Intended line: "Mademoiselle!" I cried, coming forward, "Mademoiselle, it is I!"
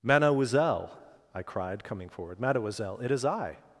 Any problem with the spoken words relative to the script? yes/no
no